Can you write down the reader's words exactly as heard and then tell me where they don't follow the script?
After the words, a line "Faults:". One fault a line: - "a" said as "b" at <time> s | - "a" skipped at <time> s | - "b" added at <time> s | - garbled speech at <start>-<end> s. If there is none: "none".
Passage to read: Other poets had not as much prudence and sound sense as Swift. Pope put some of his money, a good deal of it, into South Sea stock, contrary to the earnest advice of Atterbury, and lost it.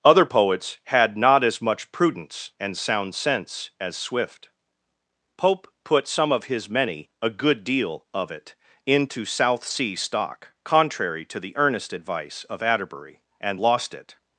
Other poets had not as much prudence and sound sense as Swift. Pope put some of his many, a good deal of it, into South Sea stock, contrary to the earnest advice of Atterbury, and lost it.
Faults:
- "money" said as "many" at 6.7 s